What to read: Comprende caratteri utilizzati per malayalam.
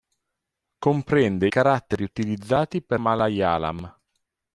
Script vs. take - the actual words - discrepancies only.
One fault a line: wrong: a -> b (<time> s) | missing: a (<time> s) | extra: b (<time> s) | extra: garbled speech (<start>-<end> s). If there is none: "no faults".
no faults